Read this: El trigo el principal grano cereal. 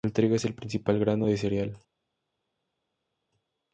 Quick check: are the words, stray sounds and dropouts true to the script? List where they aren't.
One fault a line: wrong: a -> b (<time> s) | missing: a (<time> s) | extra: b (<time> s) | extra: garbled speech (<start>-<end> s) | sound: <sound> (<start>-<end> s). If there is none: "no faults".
extra: es (0.3 s)
extra: de (1.2 s)